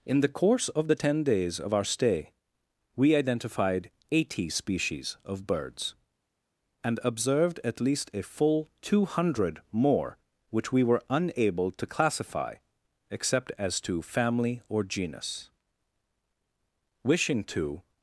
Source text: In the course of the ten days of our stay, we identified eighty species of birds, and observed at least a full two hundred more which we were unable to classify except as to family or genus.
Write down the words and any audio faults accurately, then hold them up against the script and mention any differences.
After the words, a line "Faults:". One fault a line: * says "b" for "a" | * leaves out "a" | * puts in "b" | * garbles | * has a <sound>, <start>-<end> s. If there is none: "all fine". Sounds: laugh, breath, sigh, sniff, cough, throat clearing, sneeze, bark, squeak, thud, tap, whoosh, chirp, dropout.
In the course of the ten days of our stay, we identified eighty species of birds, and observed at least a full two hundred more which we were unable to classify except as to family or genus. Wishing to
Faults:
* puts in "Wishing to"